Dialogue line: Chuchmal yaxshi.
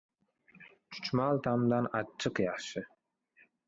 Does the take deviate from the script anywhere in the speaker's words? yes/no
yes